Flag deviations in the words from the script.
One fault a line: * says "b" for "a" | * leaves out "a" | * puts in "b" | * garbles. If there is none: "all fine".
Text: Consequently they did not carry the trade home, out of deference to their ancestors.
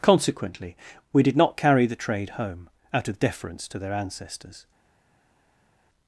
* says "we" for "they"